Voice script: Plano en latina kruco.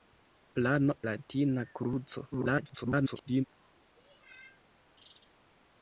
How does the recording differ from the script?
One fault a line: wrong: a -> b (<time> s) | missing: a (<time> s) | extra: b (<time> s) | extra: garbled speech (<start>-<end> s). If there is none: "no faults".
missing: en (0.9 s)
extra: garbled speech (2.3-3.4 s)